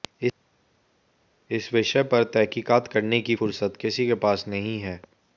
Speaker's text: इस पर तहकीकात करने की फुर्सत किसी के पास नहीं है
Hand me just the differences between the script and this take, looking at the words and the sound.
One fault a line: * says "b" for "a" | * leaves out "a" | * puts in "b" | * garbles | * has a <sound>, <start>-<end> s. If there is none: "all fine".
* puts in "विषय"